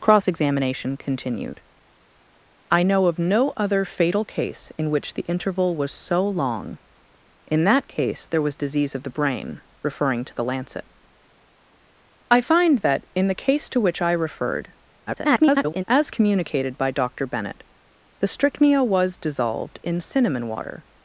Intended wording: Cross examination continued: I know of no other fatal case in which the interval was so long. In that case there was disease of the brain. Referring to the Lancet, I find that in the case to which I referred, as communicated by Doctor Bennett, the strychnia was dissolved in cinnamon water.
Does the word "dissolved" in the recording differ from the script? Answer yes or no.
no